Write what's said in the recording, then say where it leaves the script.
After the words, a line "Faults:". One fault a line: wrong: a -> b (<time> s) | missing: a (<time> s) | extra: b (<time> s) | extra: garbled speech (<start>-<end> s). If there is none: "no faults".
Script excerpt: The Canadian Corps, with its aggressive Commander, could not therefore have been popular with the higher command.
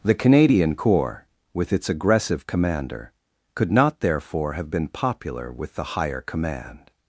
The Canadian Corps, with its aggressive Commander, could not therefore have been popular with the higher command.
Faults:
no faults